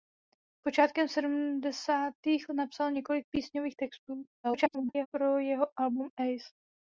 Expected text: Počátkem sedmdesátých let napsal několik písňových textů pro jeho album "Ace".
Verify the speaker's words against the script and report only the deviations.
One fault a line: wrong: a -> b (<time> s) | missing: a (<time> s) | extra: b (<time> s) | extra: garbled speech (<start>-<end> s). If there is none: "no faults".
missing: let (2.5 s)
extra: garbled speech (4.4-5.1 s)